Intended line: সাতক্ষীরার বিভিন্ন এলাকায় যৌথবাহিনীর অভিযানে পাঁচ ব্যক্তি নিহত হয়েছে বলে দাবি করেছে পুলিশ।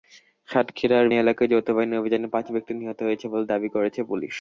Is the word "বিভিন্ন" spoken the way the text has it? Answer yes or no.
no